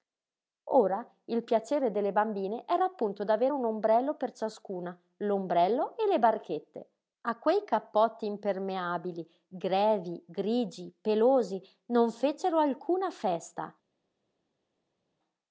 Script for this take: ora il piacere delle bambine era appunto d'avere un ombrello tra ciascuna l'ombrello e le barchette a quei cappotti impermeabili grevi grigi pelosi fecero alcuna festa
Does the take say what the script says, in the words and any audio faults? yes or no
no